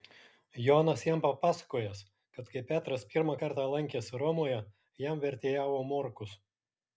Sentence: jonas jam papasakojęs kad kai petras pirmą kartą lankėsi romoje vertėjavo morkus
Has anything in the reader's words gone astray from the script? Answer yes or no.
yes